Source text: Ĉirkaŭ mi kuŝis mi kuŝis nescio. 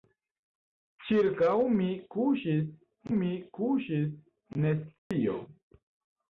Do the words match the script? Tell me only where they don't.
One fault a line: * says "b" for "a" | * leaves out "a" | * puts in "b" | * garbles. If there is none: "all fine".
all fine